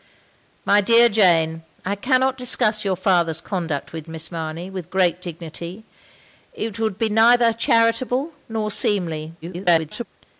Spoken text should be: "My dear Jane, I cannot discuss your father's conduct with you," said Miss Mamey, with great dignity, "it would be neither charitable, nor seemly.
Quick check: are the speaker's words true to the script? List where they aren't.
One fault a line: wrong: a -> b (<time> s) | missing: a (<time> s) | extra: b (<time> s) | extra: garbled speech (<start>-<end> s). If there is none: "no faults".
missing: you said (4.1 s)
extra: garbled speech (9.4-10.1 s)